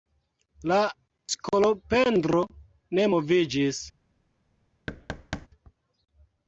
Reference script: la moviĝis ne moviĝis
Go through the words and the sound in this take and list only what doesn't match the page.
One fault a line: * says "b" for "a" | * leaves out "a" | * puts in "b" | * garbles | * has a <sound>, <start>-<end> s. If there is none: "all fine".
* says "skolopendro" for "moviĝis"
* has a thud, 4.9-5.5 s